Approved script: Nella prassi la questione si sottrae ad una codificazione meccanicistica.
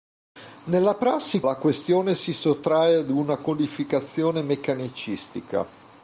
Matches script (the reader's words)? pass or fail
pass